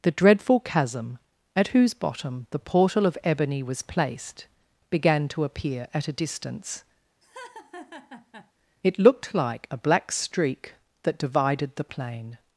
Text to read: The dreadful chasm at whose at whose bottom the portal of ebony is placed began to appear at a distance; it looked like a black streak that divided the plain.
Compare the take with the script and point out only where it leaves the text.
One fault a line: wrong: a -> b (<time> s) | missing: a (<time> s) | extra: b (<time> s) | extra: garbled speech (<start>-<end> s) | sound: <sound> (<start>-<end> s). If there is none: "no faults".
missing: at whose (1.9 s)
wrong: is -> was (3.6 s)
sound: laugh (7.2-8.5 s)